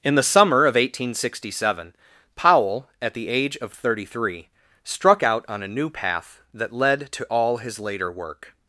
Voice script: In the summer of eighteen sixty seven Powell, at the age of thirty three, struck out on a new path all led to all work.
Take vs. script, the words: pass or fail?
fail